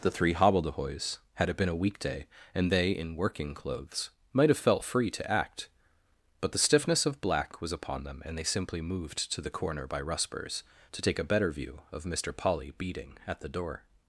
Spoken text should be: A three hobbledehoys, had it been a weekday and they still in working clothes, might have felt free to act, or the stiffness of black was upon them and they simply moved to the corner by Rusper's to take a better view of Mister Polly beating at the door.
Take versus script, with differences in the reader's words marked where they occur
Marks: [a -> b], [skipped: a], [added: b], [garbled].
[A -> The] three hobbledehoys, had it been a weekday and they [skipped: still] in working clothes, might have felt free to act, [or -> but] the stiffness of black was upon them and they simply moved to the corner by Rusper's to take a better view of Mister Polly beating at the door.